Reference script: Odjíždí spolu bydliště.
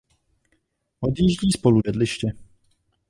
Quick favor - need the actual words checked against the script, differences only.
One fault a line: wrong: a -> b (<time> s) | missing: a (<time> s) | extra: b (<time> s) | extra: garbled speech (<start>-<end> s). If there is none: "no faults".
no faults